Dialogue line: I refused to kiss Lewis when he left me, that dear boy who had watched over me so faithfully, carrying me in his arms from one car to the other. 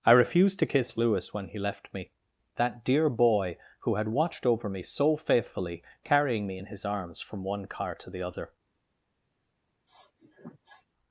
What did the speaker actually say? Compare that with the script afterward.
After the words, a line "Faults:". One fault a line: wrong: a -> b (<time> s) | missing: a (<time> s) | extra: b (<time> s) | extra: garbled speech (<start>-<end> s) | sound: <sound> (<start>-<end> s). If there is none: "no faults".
I refused to kiss Lewis when he left me, that dear boy who had watched over me so faithfully, carrying me in his arms from one car to the other.
Faults:
sound: sniff (9.9-10.9 s)